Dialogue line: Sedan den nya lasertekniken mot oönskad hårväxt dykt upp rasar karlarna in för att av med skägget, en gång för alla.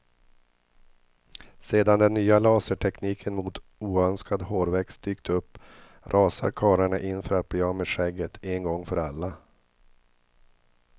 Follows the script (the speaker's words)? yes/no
no